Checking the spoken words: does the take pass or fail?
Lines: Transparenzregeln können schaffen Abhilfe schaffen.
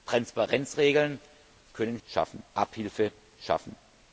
pass